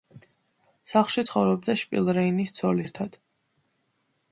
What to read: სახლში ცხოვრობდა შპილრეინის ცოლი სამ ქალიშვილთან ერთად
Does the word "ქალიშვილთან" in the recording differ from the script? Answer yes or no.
yes